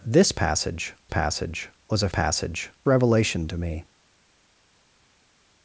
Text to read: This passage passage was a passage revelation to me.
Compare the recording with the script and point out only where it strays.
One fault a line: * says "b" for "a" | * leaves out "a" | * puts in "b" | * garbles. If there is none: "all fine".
all fine